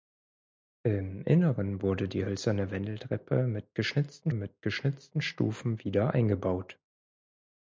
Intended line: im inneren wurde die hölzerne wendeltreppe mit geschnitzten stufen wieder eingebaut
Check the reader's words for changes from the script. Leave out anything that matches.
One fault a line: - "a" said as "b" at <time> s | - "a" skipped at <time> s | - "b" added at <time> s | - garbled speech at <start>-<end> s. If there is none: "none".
- "mit geschnitzten" added at 4.3 s